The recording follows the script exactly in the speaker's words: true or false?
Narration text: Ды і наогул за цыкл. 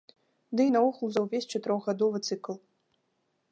false